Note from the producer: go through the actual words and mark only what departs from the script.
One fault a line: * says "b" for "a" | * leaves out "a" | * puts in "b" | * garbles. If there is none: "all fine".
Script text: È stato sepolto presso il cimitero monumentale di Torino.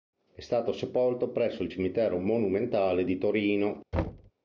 all fine